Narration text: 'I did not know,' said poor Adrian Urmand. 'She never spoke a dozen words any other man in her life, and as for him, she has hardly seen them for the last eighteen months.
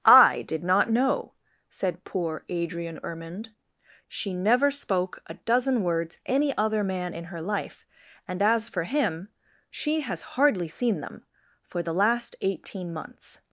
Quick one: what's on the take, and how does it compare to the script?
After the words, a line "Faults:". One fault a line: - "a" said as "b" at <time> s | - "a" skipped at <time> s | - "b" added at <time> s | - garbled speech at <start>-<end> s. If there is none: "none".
'I did not know,' said poor Adrian Urmand. 'She never spoke a dozen words any other man in her life, and as for him, she has hardly seen them for the last eighteen months.
Faults:
none